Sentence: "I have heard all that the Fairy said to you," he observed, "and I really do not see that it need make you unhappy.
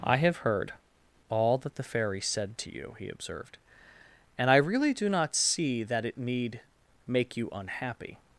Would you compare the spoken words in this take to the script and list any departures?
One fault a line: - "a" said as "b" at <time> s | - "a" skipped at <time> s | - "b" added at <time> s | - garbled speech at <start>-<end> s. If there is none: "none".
none